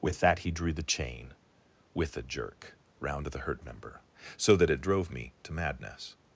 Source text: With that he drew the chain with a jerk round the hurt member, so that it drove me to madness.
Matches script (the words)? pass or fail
pass